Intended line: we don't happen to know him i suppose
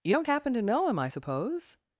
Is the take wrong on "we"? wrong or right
wrong